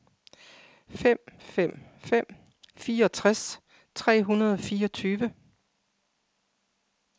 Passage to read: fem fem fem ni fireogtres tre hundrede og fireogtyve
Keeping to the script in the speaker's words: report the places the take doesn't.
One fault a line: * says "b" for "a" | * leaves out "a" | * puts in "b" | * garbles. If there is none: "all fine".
* leaves out "ni"